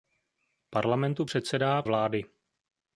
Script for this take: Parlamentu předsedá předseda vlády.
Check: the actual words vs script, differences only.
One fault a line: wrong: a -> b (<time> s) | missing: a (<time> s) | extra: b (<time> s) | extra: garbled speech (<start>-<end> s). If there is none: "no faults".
missing: předseda (1.8 s)